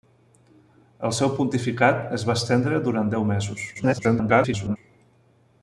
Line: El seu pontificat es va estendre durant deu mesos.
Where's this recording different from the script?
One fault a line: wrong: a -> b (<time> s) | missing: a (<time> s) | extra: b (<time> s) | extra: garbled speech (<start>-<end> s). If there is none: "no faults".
extra: garbled speech (3.7-4.8 s)